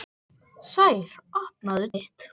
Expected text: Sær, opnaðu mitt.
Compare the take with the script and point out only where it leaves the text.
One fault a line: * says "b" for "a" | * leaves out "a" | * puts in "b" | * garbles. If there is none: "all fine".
all fine